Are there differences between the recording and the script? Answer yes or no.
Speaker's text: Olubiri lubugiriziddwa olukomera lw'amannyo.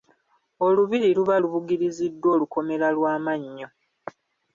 yes